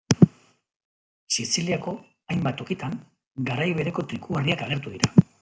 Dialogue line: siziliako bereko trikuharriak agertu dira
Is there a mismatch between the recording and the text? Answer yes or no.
yes